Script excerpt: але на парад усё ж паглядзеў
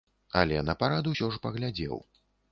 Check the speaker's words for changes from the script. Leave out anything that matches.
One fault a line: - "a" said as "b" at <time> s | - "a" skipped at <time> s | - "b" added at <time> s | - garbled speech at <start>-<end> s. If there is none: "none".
none